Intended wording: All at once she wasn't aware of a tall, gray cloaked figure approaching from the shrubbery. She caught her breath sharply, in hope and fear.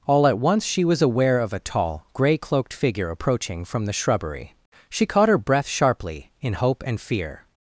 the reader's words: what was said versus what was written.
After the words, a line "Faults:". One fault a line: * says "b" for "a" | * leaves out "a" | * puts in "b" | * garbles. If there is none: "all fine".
All at once she was aware of a tall, gray cloaked figure approaching from the shrubbery. She caught her breath sharply, in hope and fear.
Faults:
* says "was" for "wasn't"